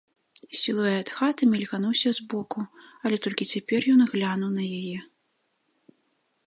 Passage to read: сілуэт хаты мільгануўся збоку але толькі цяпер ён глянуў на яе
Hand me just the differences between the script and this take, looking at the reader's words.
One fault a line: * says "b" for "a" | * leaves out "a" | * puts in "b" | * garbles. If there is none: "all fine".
all fine